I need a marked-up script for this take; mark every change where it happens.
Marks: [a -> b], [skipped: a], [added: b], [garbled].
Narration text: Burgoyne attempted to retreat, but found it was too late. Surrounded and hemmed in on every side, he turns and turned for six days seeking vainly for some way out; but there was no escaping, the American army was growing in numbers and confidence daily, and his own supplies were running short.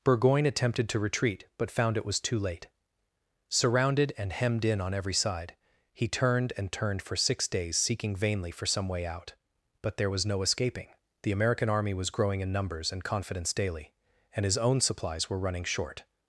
Burgoyne attempted to retreat, but found it was too late. Surrounded and hemmed in on every side, he [turns -> turned] and turned for six days seeking vainly for some way out; but there was no escaping, the American army was growing in numbers and confidence daily, and his own supplies were running short.